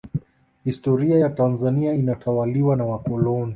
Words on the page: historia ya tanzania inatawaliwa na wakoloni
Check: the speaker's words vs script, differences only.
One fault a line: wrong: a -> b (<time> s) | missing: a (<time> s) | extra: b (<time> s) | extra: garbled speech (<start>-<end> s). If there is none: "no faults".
no faults